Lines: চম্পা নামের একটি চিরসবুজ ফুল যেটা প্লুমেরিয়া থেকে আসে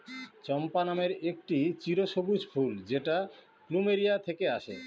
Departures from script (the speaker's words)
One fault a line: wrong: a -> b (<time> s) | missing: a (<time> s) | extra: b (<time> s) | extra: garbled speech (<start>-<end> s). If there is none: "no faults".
no faults